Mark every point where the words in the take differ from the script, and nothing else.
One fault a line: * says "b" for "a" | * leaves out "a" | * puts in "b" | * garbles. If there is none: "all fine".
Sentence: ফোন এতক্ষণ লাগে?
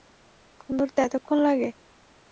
* puts in "ধরতে"